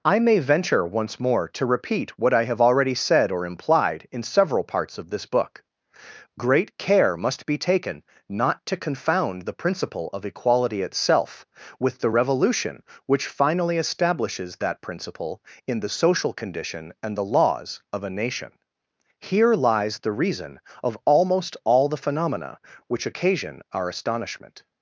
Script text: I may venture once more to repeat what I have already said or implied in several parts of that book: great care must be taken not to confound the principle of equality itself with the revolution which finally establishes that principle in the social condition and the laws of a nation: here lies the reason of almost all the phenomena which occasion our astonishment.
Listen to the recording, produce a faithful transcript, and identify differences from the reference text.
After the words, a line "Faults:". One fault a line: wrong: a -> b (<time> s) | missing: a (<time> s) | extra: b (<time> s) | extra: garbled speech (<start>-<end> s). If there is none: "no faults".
I may venture once more to repeat what I have already said or implied in several parts of this book: great care must be taken not to confound the principle of equality itself with the revolution which finally establishes that principle in the social condition and the laws of a nation: here lies the reason of almost all the phenomena which occasion our astonishment.
Faults:
wrong: that -> this (5.1 s)